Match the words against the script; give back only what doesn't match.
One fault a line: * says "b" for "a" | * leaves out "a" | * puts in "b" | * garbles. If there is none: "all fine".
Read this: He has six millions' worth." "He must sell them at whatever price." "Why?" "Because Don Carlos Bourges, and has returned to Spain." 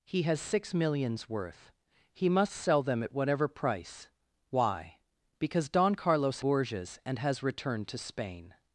all fine